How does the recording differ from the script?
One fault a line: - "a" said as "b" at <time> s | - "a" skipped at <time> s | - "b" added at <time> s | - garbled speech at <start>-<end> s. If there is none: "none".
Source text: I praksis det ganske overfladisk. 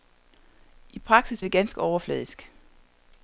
none